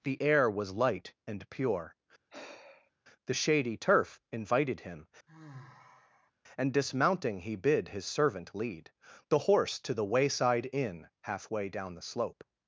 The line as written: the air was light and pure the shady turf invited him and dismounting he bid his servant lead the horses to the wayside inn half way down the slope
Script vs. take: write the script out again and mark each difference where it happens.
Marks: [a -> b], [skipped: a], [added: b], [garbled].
the air was light and pure the shady turf invited him and dismounting he bid his servant lead the [horses -> horse] to the wayside inn half way down the slope